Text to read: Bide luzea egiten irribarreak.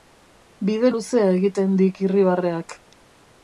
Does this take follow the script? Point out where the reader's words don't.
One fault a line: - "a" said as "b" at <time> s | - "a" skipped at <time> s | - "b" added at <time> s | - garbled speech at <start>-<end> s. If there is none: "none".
- "dik" added at 1.8 s